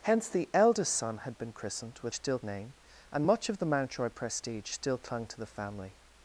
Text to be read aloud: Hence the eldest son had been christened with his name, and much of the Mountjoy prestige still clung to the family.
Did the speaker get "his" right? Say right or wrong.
wrong